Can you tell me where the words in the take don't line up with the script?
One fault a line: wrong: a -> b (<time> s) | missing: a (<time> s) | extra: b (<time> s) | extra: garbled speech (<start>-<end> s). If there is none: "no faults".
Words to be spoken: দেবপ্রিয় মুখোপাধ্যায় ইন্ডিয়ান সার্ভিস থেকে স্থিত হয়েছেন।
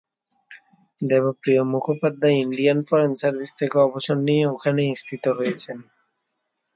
extra: ফরেন (2.9 s)
extra: অবসর নিয়ে ওখানেই (3.8 s)